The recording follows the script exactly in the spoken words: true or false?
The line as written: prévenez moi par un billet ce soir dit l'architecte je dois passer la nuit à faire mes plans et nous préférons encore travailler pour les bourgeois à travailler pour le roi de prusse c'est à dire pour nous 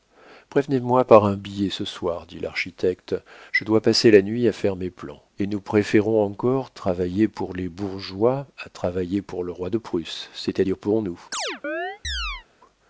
true